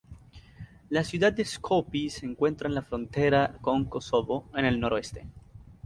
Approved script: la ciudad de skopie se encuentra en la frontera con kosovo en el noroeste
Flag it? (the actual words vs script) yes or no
no